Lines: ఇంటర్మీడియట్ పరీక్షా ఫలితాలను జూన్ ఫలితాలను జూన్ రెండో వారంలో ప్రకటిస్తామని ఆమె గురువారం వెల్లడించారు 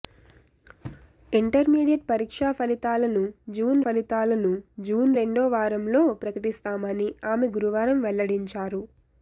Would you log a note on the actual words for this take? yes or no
no